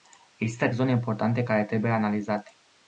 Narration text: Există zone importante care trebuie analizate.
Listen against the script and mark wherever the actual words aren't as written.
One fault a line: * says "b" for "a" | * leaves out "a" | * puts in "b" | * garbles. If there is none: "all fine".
all fine